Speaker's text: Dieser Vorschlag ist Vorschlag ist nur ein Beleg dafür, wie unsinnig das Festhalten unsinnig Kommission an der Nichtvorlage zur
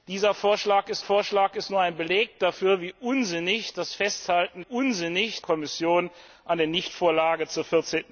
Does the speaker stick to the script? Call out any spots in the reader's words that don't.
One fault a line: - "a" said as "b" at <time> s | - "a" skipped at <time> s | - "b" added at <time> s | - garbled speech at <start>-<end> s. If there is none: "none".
none